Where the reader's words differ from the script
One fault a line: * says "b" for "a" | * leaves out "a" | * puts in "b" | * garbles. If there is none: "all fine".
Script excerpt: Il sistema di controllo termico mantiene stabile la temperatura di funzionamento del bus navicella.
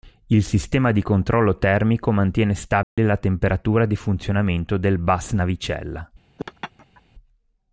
all fine